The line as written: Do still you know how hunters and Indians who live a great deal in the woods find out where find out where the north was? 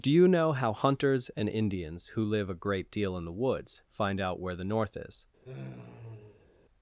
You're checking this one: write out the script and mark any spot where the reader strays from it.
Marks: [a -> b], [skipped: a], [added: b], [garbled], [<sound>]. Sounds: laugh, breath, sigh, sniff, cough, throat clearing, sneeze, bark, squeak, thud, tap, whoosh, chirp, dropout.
Do [skipped: still] you know how hunters and Indians who live a great deal in the woods find out where [skipped: find out where] the north [was? -> is] [sigh]